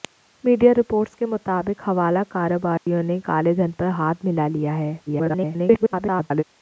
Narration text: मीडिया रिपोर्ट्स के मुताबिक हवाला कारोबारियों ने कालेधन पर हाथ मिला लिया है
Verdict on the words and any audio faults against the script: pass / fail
fail